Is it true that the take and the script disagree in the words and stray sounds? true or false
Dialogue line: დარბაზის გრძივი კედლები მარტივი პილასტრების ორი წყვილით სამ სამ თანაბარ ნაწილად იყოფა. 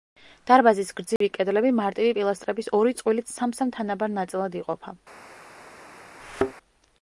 true